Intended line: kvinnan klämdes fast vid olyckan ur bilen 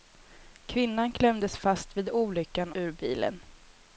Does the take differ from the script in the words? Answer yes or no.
no